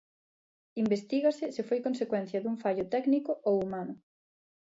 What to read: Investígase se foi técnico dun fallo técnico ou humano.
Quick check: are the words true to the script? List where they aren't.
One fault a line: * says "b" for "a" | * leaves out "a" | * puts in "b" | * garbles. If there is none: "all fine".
* says "consecuencia" for "técnico"